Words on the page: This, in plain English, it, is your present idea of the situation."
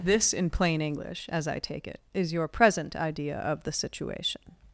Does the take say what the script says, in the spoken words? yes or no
no